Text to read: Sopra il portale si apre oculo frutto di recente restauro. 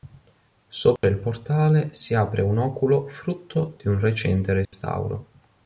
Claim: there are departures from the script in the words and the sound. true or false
true